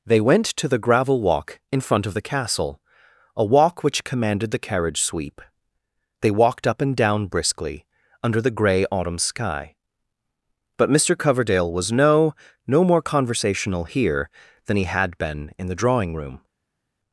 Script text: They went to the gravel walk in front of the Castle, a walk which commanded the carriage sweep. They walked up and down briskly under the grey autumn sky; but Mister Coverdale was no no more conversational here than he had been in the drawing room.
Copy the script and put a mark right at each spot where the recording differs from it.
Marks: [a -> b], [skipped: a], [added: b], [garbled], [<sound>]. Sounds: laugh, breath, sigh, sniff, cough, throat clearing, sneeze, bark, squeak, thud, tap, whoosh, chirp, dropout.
They went to the gravel walk in front of the Castle, a walk which commanded the carriage sweep. They walked up and down briskly under the grey autumn sky; but Mister Coverdale was no no more conversational here than he had been in the drawing room.